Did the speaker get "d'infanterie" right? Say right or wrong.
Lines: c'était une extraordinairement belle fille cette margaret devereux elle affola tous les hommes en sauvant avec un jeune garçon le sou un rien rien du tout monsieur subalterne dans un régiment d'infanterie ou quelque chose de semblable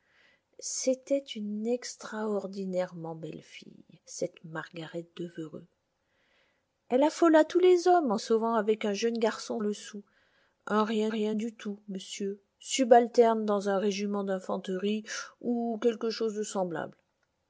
right